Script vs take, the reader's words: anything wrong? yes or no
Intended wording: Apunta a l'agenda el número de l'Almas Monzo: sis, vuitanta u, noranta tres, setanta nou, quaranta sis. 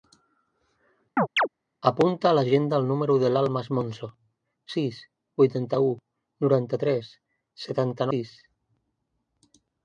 yes